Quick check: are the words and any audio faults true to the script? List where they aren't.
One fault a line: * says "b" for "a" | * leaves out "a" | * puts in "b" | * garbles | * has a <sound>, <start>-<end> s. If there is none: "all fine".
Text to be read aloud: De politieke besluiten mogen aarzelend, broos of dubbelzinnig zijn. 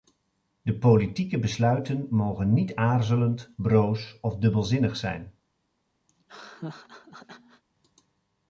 * puts in "niet"
* has a laugh, 6.1-7.6 s